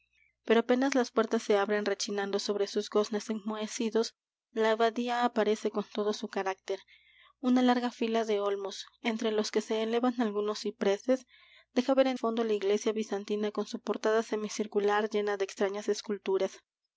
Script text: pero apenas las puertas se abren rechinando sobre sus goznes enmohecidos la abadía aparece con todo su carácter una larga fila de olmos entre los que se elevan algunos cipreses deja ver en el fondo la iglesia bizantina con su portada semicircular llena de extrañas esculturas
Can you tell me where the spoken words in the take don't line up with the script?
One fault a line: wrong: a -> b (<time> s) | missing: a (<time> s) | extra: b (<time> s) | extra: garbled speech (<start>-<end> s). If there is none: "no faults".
missing: el (12.2 s)